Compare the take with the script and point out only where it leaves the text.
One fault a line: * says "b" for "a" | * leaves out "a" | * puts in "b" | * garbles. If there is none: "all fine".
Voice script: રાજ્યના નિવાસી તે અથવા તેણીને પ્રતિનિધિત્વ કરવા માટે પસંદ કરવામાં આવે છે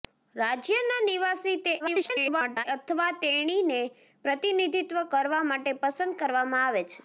* garbles